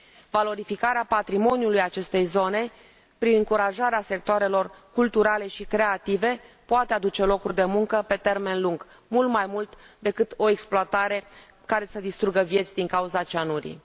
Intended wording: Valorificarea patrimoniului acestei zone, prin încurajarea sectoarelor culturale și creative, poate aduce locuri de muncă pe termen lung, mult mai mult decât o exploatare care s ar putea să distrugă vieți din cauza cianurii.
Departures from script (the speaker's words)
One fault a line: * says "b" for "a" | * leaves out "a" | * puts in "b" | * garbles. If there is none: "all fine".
* leaves out "ar putea"